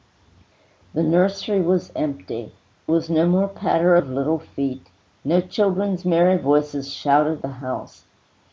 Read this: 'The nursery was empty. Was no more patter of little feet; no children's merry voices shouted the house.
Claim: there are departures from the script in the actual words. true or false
false